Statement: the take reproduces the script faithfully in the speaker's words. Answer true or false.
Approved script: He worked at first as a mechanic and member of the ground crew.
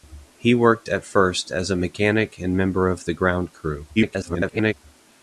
false